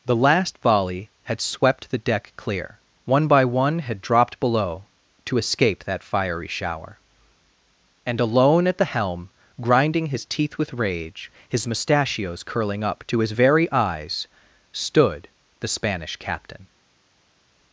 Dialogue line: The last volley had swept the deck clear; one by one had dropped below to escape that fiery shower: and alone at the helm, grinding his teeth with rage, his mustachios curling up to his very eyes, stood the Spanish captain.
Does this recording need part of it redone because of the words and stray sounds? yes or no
no